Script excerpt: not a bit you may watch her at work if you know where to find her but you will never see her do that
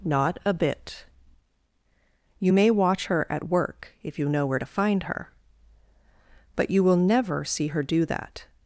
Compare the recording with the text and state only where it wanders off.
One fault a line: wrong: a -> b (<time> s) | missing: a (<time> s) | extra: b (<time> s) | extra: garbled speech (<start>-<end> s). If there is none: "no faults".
no faults